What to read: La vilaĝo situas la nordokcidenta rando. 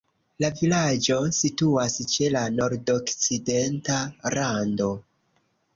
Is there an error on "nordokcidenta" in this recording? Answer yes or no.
no